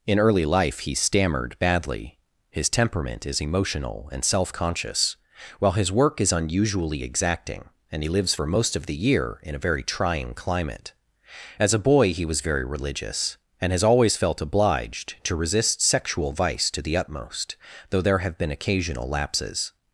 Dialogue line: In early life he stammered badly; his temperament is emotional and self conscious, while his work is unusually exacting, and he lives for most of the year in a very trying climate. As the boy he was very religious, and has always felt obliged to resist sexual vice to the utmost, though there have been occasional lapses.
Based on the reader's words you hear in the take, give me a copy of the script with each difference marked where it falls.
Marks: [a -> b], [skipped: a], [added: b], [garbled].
In early life he stammered badly; his temperament is emotional and self conscious, while his work is unusually exacting, and he lives for most of the year in a very trying climate. As [the -> a] boy he was very religious, and has always felt obliged to resist sexual vice to the utmost, though there have been occasional lapses.